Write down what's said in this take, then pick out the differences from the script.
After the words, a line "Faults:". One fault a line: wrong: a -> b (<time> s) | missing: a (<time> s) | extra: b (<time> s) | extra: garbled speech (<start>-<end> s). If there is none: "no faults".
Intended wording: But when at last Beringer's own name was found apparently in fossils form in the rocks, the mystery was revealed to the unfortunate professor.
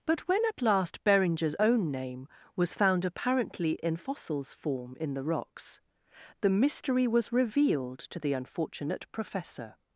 But when at last Beringer's own name was found apparently in fossils form in the rocks, the mystery was revealed to the unfortunate professor.
Faults:
no faults